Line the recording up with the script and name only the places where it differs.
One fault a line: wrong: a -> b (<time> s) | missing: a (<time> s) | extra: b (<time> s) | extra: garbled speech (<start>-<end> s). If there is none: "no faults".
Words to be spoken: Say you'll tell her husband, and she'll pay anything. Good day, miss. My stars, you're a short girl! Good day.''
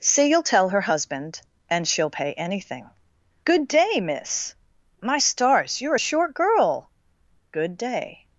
no faults